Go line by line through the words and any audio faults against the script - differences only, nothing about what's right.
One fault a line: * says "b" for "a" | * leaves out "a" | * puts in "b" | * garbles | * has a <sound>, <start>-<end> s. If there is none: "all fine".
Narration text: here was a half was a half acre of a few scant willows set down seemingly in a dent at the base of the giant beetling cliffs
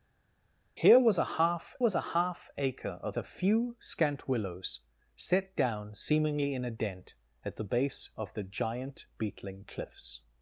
all fine